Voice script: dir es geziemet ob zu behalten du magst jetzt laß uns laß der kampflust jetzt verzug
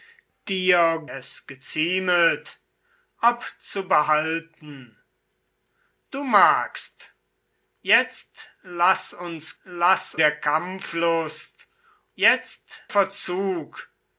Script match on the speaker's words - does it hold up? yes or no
yes